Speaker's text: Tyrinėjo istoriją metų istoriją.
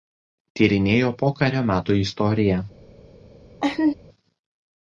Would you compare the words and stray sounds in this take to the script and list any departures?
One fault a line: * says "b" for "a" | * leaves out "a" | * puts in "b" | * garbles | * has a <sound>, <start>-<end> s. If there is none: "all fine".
* says "pokario" for "istoriją"
* has a laugh, 3.6-3.9 s